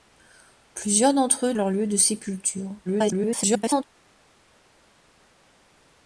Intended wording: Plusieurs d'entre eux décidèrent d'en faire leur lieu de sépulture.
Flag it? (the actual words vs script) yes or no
yes